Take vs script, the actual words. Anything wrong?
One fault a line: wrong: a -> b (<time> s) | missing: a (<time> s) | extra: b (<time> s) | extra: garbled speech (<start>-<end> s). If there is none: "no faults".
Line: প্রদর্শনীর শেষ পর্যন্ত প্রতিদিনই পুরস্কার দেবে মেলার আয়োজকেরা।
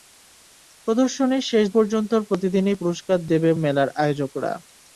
no faults